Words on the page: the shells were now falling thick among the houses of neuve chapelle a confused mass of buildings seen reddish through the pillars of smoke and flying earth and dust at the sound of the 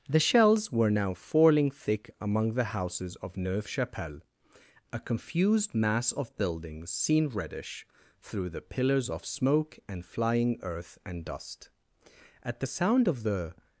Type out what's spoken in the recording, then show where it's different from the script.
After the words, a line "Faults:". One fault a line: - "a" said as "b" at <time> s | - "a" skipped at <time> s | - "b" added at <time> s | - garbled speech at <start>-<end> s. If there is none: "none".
the shells were now falling thick among the houses of neuve chapelle a confused mass of buildings seen reddish through the pillars of smoke and flying earth and dust at the sound of the
Faults:
none